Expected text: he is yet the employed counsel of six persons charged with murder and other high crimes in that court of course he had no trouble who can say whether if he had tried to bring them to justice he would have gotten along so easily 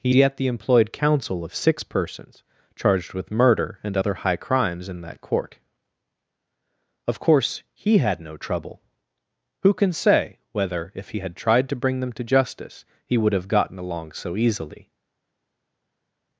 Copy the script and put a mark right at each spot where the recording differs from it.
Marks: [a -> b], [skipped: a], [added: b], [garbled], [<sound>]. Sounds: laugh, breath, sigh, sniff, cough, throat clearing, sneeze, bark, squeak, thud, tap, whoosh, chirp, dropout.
he [skipped: is] yet the employed counsel of six persons charged with murder and other high crimes in that court of course he had no trouble who can say whether if he had tried to bring them to justice he would have gotten along so easily